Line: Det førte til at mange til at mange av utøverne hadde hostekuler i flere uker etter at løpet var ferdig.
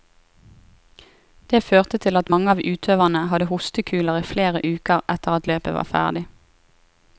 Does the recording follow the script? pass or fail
fail